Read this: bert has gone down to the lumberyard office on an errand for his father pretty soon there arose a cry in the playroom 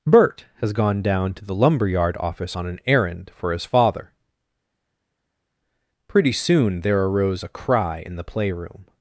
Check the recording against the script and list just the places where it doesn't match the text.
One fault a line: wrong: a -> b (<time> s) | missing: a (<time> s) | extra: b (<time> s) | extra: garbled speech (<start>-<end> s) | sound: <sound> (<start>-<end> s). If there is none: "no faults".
no faults